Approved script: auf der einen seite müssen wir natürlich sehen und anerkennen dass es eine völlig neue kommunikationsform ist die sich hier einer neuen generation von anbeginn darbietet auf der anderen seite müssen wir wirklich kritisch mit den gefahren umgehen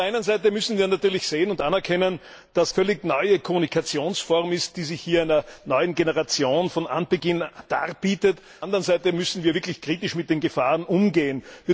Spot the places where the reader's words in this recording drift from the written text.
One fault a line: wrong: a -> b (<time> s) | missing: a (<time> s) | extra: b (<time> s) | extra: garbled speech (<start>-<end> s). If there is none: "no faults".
missing: es eine (2.7 s)
missing: auf der (8.4 s)